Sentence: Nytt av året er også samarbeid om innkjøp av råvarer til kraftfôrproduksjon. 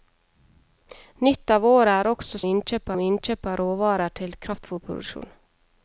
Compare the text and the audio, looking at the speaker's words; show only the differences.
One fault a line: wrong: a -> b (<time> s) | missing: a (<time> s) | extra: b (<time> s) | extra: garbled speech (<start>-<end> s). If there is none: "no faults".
wrong: samarbeid -> innkjøp (2.5 s)